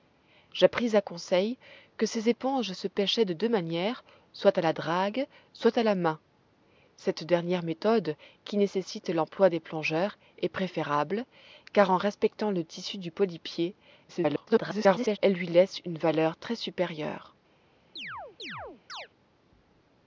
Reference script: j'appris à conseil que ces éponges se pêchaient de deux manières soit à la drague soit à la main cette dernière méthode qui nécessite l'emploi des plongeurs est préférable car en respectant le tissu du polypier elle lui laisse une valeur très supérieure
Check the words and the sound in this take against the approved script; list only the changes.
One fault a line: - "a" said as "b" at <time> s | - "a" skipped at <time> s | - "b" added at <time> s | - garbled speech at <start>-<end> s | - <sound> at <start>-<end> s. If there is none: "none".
- garbled speech at 14.1-15.2 s
- chirp at 18.0-19.1 s